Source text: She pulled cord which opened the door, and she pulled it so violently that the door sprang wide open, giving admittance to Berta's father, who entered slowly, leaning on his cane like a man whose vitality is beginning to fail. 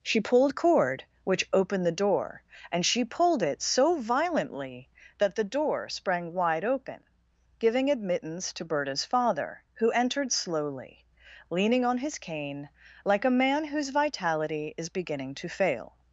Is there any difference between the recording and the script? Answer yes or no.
no